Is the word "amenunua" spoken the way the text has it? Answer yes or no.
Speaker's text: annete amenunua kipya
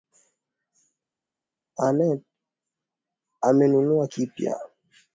yes